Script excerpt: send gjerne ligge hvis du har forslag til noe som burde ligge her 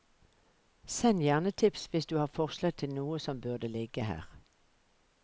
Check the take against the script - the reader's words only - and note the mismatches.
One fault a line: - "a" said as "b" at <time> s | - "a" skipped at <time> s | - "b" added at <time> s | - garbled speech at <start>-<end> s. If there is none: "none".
- "ligge" said as "tips" at 1.5 s